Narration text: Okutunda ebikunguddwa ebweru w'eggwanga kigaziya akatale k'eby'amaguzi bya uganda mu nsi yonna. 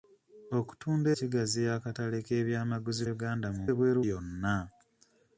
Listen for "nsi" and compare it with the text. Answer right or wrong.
wrong